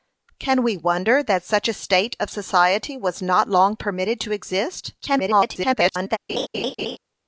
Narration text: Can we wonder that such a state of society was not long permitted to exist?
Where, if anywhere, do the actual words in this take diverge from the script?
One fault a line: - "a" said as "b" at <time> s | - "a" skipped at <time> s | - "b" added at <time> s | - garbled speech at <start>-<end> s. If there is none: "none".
- garbled speech at 5.0-6.2 s